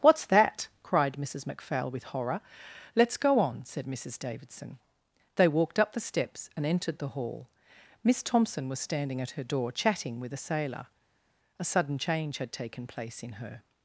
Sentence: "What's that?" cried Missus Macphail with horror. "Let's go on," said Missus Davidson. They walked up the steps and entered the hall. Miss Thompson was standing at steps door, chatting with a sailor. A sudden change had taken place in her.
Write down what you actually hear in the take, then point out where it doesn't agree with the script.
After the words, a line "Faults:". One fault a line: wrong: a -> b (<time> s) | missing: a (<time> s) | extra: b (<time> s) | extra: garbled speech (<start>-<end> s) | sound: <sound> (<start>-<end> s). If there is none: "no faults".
"What's that?" cried Missus Macphail with horror. "Let's go on," said Missus Davidson. They walked up the steps and entered the hall. Miss Thompson was standing at her door, chatting with a sailor. A sudden change had taken place in her.
Faults:
wrong: steps -> her (9.3 s)